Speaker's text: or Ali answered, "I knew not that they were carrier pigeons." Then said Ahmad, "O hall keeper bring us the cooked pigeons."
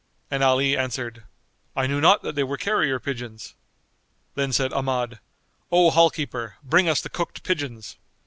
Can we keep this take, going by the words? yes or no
no